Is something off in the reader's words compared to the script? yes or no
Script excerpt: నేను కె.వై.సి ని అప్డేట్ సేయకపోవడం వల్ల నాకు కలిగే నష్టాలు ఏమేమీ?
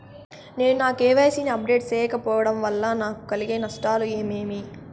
yes